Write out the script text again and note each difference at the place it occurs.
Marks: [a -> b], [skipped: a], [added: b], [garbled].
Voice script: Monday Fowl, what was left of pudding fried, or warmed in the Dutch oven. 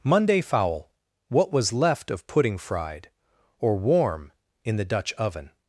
Monday Fowl, what was left of pudding fried, or [warmed -> warm] in the Dutch oven.